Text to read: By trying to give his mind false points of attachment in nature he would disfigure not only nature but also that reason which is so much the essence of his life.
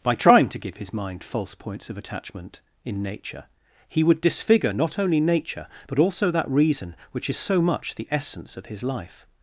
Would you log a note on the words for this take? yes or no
no